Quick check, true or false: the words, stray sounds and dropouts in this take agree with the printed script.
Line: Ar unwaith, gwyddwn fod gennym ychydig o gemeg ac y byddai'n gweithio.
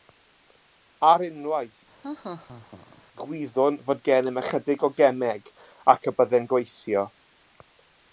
false